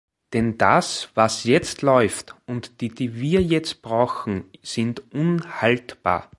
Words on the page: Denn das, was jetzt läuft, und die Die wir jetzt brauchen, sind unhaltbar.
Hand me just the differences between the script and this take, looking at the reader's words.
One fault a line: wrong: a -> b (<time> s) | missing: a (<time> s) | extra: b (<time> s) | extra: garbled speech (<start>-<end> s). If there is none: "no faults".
no faults